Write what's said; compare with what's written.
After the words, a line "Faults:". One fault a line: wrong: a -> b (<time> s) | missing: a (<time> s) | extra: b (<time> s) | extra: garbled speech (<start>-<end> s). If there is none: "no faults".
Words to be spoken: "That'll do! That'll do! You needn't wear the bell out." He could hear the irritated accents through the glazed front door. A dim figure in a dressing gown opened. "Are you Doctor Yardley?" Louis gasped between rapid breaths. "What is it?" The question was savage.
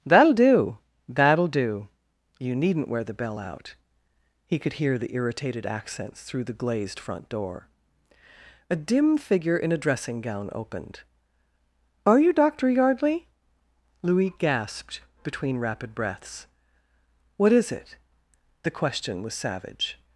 "That'll do! That'll do! You needn't wear the bell out." He could hear the irritated accents through the glazed front door. A dim figure in a dressing gown opened. "Are you Doctor Yardley?" Louis gasped between rapid breaths. "What is it?" The question was savage.
Faults:
no faults